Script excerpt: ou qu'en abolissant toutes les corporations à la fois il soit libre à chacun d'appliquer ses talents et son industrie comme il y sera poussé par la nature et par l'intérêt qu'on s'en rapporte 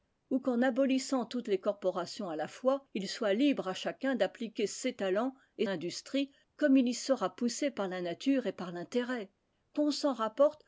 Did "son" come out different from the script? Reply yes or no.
yes